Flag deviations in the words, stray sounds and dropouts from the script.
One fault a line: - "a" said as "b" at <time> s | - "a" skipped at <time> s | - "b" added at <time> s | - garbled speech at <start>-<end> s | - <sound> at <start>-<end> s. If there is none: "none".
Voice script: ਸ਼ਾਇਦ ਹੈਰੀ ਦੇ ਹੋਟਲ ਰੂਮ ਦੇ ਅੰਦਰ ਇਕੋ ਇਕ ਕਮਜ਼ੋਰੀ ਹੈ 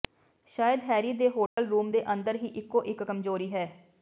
- dropout at 1.5-1.6 s
- "ਹੀ" added at 2.4 s